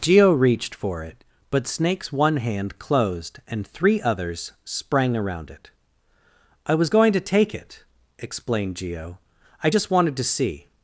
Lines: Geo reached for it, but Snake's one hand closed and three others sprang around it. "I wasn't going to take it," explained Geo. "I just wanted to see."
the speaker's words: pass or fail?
fail